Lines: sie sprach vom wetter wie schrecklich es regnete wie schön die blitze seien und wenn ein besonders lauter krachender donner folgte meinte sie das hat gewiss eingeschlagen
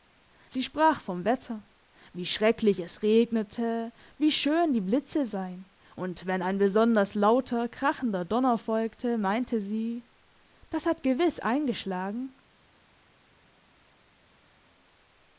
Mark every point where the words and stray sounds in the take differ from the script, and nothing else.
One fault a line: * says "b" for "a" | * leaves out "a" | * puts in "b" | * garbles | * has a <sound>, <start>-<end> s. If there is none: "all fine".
all fine